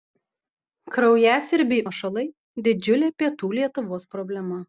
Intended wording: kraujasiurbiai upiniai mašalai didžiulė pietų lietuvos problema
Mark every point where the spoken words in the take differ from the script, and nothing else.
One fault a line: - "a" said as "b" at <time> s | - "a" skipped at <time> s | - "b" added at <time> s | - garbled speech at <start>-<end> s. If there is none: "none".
- "upiniai" skipped at 1.9 s